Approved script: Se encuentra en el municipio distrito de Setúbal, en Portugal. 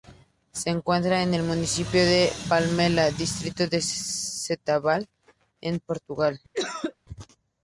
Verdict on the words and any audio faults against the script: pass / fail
fail